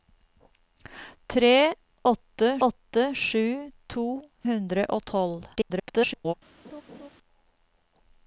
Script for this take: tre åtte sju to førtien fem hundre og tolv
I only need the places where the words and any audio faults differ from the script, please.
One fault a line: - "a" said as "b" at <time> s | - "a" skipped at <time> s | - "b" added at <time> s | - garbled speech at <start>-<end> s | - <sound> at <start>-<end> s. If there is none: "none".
- "åtte" added at 2.7 s
- "førtien fem" skipped at 4.0 s
- garbled speech at 5.5-6.3 s
- laugh at 6.6-7.1 s